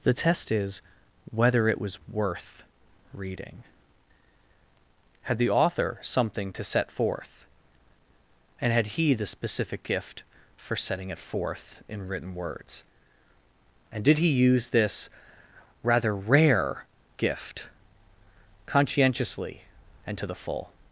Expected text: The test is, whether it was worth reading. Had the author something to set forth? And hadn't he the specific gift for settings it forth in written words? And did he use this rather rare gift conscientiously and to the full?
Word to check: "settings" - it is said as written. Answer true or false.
false